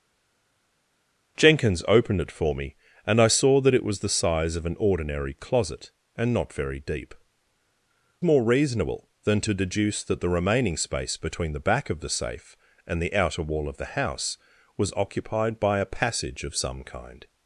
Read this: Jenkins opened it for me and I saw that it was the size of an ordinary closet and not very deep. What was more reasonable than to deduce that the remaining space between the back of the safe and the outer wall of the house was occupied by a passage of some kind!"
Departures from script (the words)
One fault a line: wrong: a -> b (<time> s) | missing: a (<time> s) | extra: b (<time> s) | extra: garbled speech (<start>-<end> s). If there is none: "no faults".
missing: What was (7.1 s)